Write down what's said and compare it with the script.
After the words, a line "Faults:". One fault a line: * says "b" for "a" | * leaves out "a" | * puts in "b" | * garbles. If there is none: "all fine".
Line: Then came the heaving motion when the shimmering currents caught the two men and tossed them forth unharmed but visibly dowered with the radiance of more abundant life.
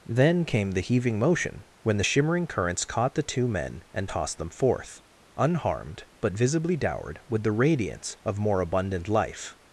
Then came the heaving motion when the shimmering currents caught the two men and tossed them forth unharmed but visibly dowered with the radiance of more abundant life.
Faults:
all fine